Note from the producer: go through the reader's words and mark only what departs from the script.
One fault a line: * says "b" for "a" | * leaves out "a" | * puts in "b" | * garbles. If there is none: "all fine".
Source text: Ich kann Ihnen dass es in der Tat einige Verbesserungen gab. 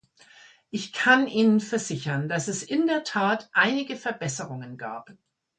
* puts in "versichern"